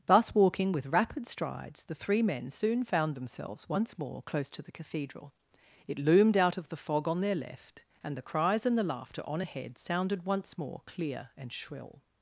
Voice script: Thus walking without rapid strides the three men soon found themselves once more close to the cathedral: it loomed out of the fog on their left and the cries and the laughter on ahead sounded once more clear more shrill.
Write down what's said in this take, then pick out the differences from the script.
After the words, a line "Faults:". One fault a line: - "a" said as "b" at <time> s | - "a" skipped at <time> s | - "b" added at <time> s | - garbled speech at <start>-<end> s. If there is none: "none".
Thus walking with rapid strides the three men soon found themselves once more close to the cathedral: it loomed out of the fog on their left and the cries and the laughter on ahead sounded once more clear and shrill.
Faults:
- "without" said as "with" at 0.7 s
- "more" said as "and" at 11.4 s